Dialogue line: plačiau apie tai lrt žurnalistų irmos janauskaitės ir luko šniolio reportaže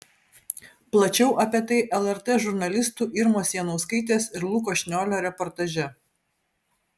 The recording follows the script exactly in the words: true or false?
true